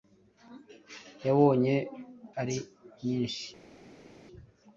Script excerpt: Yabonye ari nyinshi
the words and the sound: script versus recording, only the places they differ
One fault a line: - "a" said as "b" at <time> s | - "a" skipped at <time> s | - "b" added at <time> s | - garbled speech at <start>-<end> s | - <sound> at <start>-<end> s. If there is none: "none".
none